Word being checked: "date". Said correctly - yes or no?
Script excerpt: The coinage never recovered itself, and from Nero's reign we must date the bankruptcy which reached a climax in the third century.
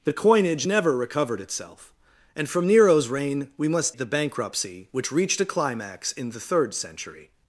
no